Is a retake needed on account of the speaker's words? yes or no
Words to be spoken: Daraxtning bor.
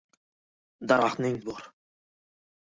no